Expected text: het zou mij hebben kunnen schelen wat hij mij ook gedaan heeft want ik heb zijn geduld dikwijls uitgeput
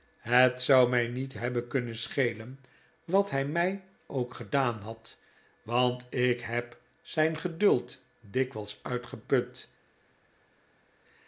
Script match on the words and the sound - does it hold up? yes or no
no